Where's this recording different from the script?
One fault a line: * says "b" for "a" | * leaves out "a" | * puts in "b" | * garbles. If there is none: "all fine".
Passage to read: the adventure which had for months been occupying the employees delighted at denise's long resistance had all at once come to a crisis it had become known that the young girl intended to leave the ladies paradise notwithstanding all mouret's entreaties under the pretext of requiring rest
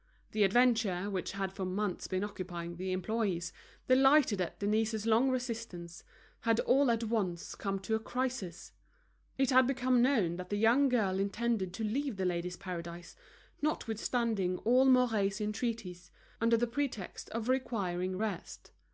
all fine